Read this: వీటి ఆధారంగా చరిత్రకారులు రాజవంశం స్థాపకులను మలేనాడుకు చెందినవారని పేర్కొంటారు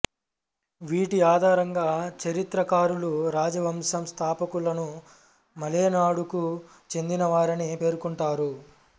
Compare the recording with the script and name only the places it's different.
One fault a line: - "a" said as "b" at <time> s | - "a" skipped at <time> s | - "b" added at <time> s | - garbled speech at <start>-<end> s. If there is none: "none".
none